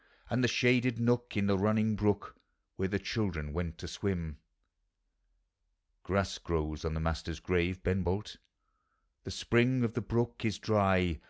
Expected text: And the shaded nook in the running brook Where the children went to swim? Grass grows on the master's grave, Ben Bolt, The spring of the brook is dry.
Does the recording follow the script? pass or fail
pass